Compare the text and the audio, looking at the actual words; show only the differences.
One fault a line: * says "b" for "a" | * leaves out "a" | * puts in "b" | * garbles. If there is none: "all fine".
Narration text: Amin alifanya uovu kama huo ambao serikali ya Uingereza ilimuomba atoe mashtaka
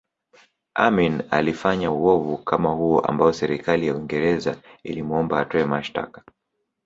all fine